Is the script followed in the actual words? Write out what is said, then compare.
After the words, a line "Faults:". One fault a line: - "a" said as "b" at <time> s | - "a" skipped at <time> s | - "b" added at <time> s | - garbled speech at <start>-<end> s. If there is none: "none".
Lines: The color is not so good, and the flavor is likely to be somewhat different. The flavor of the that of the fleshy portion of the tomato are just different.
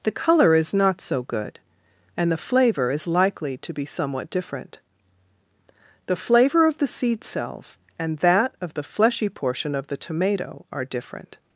The color is not so good, and the flavor is likely to be somewhat different. The flavor of the seed cells and that of the fleshy portion of the tomato are different.
Faults:
- "seed cells and" added at 6.9 s
- "just" skipped at 10.8 s